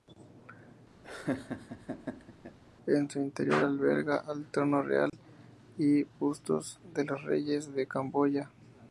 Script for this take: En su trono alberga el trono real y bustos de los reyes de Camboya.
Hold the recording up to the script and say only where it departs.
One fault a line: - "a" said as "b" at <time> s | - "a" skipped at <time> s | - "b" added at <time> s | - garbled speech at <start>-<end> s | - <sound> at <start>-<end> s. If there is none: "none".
- laugh at 1.0-2.6 s
- "trono" said as "interior" at 3.2 s
- dropout at 5.1-5.1 s